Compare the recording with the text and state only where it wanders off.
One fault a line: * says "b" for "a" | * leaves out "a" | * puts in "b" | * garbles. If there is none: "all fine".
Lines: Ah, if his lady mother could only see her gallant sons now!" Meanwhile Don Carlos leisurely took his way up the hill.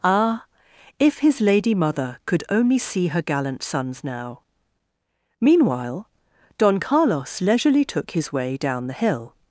* says "down" for "up"